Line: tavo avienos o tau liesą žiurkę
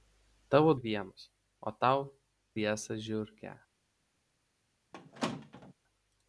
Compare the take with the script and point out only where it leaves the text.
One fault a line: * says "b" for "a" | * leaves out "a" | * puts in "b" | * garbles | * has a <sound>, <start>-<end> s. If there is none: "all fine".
* has a squeak, 4.9-5.7 s